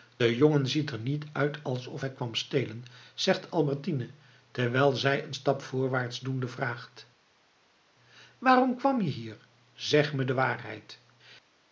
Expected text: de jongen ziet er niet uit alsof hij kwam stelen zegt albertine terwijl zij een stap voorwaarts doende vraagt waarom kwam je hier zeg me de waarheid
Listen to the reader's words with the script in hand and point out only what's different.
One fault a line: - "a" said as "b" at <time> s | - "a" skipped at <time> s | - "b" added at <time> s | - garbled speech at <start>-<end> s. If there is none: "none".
none